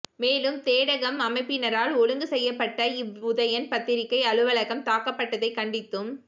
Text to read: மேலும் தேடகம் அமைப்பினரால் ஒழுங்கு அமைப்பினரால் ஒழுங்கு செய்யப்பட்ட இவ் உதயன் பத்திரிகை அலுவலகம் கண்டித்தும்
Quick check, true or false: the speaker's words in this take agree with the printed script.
false